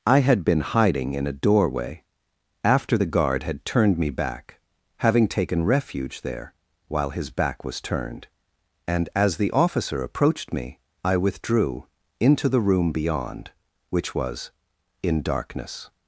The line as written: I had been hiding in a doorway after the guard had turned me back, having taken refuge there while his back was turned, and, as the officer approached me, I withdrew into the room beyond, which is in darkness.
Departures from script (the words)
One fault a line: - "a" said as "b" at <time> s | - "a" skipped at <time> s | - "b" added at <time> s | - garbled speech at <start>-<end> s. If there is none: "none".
- "is" said as "was" at 14.1 s